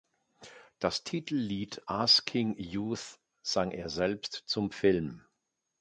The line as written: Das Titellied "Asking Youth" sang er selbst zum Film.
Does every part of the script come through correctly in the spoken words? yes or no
yes